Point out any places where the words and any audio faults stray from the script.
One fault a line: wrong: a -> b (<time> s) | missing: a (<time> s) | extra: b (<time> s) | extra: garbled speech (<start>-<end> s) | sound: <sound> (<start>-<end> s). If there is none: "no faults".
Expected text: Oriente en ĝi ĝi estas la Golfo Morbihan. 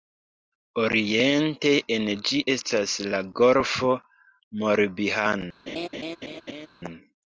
missing: ĝi (2.4 s)
sound: laugh (5.7-6.7 s)